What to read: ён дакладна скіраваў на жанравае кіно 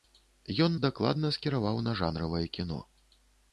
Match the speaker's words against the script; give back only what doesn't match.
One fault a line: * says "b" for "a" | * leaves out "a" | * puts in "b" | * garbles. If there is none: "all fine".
all fine